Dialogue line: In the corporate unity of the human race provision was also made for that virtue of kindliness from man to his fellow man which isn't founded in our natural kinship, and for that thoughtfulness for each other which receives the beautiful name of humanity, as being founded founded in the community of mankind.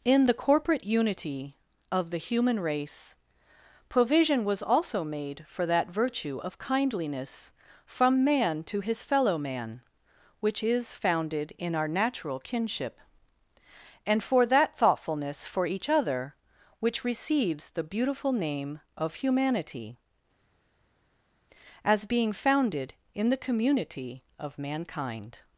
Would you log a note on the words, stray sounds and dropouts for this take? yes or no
yes